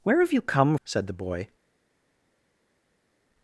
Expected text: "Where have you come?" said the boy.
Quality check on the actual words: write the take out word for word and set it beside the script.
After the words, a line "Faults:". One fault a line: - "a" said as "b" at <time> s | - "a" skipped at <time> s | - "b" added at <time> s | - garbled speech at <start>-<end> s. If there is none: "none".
"Where have you come?" said the boy.
Faults:
none